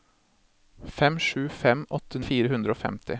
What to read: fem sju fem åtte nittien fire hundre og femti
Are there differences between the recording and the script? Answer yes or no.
yes